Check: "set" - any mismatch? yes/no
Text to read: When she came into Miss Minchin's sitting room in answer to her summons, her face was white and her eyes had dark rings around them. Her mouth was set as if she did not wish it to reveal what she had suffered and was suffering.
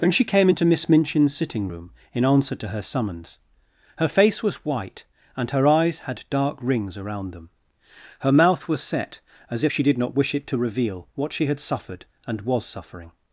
no